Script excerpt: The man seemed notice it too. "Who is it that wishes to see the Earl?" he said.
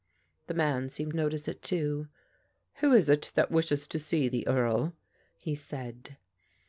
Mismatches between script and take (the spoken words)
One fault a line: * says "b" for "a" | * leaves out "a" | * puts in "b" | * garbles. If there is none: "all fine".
all fine